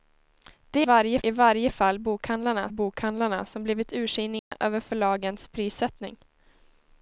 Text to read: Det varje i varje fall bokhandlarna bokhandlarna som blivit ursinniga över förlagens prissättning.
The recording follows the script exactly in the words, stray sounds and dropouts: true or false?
false